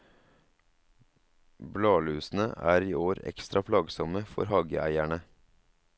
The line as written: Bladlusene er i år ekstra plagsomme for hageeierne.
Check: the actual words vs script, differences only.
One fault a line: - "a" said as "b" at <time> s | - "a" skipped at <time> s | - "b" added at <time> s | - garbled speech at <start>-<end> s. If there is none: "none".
none